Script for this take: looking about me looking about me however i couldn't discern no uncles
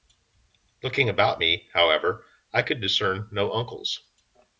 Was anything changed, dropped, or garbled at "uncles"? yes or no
no